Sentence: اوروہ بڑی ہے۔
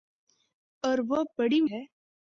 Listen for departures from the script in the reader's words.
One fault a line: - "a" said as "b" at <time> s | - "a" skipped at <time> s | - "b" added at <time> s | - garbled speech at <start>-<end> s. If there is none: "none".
none